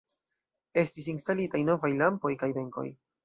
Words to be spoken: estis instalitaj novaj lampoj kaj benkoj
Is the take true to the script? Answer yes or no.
yes